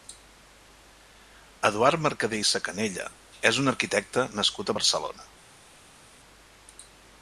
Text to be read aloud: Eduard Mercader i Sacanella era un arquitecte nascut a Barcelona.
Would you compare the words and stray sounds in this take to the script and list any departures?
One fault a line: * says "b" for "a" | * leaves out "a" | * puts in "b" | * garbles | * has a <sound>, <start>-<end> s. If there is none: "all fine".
* says "és" for "era"